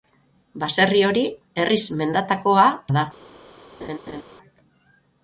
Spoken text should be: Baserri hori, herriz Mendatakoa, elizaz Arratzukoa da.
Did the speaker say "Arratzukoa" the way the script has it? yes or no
no